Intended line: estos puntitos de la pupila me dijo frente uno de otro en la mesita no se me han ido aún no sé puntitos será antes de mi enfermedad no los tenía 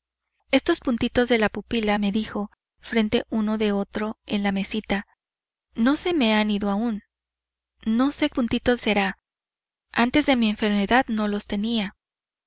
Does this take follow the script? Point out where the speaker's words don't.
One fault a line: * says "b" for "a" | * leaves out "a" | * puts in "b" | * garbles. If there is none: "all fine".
all fine